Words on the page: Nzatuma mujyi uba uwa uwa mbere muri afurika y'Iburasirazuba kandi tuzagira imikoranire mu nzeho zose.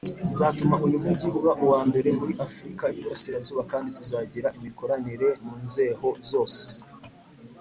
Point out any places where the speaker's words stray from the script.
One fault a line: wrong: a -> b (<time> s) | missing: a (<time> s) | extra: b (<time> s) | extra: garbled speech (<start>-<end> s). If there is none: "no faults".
extra: uyu (0.8 s)
missing: uwa (1.8 s)